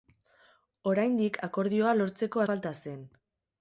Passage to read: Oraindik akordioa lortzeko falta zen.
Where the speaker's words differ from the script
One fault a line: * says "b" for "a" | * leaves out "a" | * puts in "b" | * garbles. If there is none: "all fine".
all fine